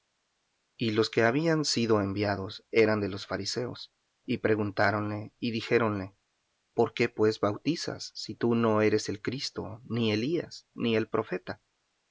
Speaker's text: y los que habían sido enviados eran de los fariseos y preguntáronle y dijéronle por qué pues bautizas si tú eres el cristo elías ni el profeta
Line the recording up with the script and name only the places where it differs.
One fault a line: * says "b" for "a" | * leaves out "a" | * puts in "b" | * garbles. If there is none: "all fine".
* puts in "no"
* puts in "ni"